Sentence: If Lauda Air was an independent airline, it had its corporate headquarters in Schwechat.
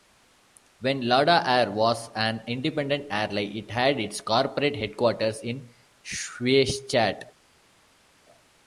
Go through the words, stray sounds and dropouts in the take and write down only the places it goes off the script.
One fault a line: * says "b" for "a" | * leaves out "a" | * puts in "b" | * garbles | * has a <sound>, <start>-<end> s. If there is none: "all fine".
* says "When" for "If"